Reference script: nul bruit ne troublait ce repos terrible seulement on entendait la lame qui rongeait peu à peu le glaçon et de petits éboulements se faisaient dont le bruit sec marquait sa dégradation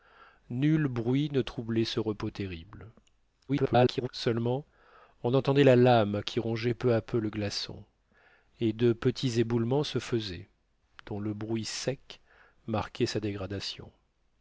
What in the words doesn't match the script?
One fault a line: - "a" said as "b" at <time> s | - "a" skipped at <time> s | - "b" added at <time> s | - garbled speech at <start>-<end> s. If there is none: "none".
- garbled speech at 3.5-4.1 s